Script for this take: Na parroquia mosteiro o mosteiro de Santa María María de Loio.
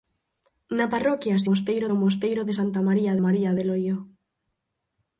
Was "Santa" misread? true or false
false